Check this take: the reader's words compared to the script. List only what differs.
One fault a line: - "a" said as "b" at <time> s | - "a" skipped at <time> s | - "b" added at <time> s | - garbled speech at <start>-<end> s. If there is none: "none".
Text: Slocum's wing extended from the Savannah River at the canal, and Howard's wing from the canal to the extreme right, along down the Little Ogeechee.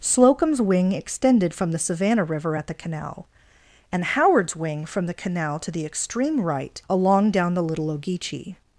none